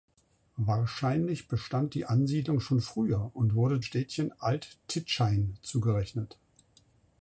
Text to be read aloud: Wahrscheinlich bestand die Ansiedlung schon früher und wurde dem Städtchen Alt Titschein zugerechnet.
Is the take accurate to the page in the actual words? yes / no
no